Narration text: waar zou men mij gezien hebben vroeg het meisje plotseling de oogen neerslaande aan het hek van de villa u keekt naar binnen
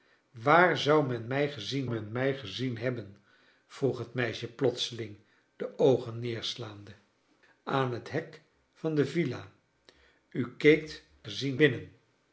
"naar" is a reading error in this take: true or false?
true